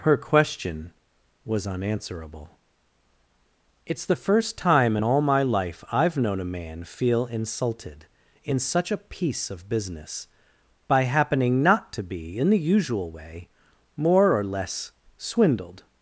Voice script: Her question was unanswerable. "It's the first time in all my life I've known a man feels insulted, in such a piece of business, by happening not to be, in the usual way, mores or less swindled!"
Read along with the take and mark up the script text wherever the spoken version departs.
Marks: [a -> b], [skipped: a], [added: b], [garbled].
Her question was unanswerable. "It's the first time in all my life I've known a man [feels -> feel] insulted, in such a piece of business, by happening not to be, in the usual way, [mores -> more] or less swindled!"